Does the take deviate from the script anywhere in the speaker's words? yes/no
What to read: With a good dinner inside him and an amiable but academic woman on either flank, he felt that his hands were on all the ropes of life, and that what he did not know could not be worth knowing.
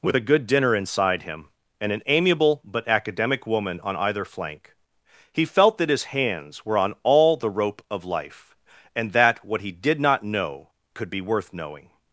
yes